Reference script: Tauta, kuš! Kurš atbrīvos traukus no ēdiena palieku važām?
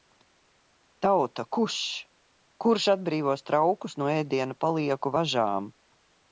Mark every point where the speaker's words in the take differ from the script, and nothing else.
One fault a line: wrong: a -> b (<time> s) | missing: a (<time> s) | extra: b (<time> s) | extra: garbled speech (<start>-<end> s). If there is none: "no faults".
no faults